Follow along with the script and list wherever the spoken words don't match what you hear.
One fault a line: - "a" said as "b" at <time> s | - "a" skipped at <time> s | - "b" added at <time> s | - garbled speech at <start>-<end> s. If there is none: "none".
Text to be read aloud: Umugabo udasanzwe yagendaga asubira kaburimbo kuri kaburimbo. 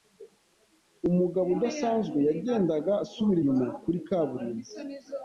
- "kaburimbo" said as "inyuma" at 3.4 s